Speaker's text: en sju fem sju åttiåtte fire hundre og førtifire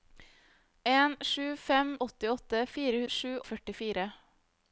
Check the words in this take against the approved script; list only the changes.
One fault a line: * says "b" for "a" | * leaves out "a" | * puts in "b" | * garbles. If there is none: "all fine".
* leaves out "sju"
* says "sju" for "hundre"